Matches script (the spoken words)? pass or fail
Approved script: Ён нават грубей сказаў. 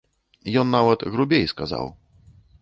pass